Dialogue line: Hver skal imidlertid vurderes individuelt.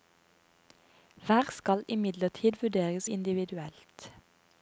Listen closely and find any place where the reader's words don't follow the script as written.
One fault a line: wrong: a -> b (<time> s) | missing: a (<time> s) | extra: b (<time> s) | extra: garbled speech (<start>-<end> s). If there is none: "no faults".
no faults